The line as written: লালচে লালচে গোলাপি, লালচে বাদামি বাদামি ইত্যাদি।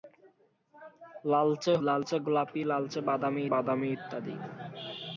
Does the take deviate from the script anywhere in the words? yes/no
no